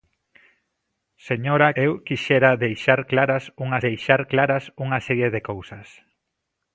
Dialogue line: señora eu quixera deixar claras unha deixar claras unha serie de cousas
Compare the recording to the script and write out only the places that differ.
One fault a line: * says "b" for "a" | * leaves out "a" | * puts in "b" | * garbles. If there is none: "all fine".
all fine